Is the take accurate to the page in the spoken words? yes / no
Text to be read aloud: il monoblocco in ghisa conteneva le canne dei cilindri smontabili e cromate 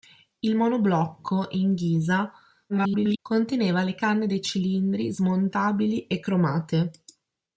no